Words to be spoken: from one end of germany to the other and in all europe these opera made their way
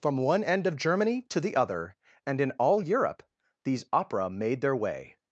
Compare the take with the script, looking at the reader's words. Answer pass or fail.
pass